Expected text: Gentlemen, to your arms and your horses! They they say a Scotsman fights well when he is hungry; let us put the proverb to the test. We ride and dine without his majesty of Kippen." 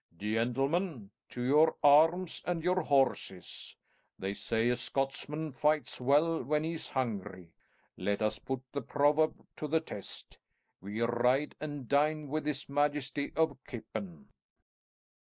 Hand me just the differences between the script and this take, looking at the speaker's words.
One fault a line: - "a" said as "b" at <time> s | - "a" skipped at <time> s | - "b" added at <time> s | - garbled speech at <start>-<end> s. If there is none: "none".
- "they" skipped at 4.3 s
- "without" said as "with" at 12.3 s